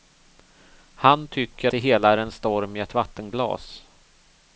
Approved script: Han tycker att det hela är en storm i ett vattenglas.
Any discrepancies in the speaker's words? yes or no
yes